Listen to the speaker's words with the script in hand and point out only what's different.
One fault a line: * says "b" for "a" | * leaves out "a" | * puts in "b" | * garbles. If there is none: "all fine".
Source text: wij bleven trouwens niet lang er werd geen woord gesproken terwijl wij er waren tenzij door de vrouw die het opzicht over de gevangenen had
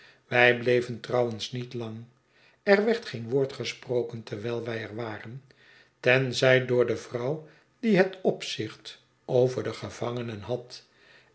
all fine